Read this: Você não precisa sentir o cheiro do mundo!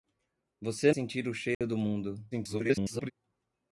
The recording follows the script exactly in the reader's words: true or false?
false